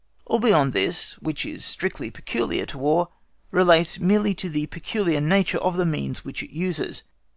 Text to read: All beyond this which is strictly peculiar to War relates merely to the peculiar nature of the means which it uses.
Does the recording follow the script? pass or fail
pass